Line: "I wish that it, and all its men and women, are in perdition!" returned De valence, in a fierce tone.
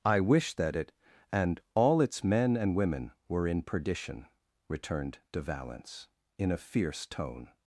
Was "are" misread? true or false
true